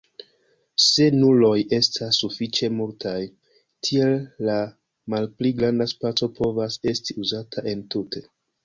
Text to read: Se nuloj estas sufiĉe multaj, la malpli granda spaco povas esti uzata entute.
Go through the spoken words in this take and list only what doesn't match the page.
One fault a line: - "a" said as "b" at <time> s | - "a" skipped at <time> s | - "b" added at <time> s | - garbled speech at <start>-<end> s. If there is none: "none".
- "tiel" added at 3.9 s